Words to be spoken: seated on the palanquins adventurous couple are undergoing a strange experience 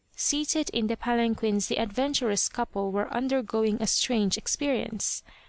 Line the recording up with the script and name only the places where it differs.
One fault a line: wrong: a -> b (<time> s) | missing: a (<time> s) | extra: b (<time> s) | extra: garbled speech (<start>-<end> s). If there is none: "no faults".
wrong: on -> in (0.7 s)
extra: the (1.7 s)
wrong: are -> were (2.9 s)